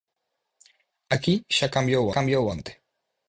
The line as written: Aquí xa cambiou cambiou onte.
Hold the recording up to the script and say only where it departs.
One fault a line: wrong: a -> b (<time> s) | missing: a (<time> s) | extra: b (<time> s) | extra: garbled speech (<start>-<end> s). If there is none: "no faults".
no faults